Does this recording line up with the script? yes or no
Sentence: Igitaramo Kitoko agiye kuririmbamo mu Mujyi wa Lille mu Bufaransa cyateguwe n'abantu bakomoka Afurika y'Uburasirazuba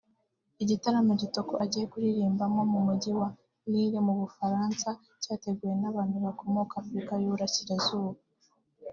yes